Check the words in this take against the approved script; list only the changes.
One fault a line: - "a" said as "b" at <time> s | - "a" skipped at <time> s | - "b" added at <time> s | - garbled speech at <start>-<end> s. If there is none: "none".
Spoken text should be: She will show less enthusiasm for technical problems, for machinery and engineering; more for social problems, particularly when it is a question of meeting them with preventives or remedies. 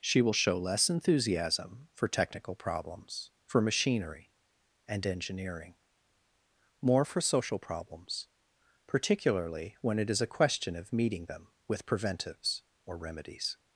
none